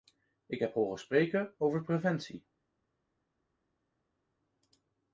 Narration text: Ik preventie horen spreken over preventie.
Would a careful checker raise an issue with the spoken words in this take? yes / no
yes